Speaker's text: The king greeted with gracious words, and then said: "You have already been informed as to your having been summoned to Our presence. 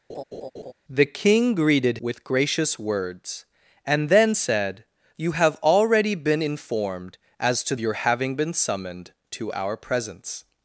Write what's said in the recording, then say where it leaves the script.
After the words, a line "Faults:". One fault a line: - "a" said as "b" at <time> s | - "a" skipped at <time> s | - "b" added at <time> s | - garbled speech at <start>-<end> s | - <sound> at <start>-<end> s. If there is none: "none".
The king greeted with gracious words, and then said: "You have already been informed as to your having been summoned to Our presence.
Faults:
- laugh at 0.1-0.7 s